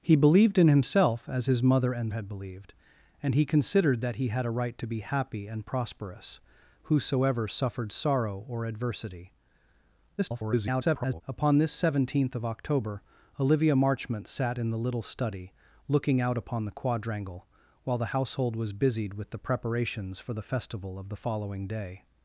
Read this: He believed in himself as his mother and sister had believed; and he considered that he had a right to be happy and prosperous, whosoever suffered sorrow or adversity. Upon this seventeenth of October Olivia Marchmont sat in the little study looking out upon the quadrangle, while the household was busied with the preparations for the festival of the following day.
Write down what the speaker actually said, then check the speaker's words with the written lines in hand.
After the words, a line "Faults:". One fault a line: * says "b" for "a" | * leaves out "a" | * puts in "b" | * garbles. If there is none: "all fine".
He believed in himself as his mother and had believed; and he considered that he had a right to be happy and prosperous, whosoever suffered sorrow or adversity. [garbled] Upon this seventeenth of October Olivia Marchmont sat in the little study looking out upon the quadrangle, while the household was busied with the preparations for the festival of the following day.
Faults:
* leaves out "sister"
* garbles